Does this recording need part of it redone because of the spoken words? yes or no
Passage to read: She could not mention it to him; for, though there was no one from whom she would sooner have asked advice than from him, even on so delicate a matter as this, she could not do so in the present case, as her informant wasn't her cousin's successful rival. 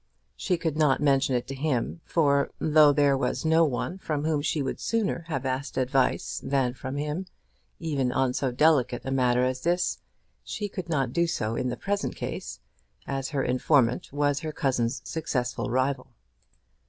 yes